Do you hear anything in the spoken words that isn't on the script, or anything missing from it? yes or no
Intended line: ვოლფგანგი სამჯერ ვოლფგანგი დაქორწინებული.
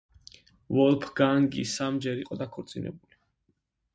yes